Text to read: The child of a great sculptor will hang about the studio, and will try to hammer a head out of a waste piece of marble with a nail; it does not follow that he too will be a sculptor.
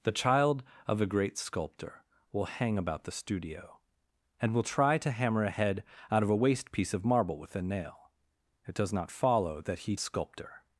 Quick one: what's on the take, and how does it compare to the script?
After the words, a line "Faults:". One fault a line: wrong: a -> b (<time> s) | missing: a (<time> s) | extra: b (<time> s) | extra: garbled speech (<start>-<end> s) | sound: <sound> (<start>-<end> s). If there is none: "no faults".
The child of a great sculptor will hang about the studio, and will try to hammer a head out of a waste piece of marble with a nail; it does not follow that he a sculptor.
Faults:
missing: too will be (9.9 s)